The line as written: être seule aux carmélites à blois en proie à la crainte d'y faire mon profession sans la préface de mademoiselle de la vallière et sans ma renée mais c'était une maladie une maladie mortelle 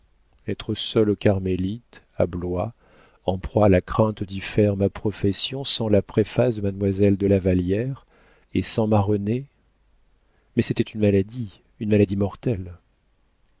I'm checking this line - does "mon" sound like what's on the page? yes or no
no